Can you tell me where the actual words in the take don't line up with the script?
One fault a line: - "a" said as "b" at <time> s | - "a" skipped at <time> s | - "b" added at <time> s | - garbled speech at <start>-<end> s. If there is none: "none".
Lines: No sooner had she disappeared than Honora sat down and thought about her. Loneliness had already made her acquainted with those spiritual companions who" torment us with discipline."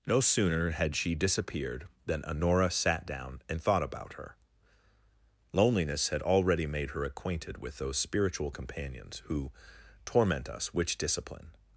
- "with" said as "which" at 10.7 s